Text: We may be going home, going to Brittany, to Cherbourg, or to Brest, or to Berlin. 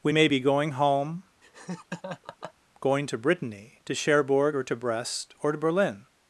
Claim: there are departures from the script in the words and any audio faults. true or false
true